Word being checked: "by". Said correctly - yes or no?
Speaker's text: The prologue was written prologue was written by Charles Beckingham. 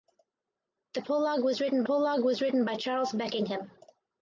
yes